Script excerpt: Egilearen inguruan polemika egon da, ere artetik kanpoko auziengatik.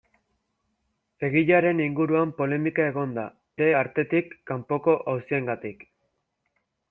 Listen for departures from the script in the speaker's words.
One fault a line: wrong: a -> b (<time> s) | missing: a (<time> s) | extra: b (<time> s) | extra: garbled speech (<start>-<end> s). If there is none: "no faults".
no faults